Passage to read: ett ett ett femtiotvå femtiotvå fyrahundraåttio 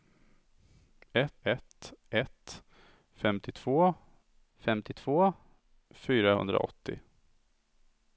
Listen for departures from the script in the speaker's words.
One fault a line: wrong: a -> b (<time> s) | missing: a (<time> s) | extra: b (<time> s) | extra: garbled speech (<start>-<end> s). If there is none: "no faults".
no faults